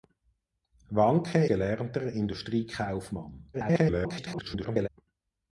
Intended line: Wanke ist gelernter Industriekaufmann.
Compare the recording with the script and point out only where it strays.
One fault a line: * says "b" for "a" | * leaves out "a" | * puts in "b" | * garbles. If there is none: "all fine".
* leaves out "ist"
* garbles